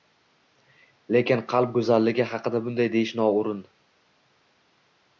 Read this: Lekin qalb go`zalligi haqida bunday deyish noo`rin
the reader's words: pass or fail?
pass